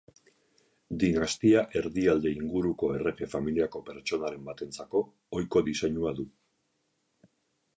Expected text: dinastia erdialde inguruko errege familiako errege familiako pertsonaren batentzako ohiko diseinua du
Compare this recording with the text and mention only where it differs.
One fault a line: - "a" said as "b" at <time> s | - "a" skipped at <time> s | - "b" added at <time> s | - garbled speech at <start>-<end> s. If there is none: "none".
- "errege familiako" skipped at 3.8 s